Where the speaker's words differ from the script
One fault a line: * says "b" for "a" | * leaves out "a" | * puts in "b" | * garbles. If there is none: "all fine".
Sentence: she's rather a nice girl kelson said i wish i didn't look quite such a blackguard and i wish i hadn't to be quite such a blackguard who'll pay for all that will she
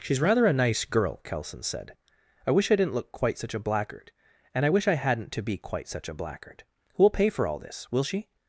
* says "this" for "that"